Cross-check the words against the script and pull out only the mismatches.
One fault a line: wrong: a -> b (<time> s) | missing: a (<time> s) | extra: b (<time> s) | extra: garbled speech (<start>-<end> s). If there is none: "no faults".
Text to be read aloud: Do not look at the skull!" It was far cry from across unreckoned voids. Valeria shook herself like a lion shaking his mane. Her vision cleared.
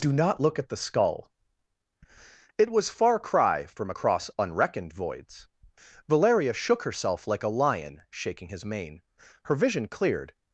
no faults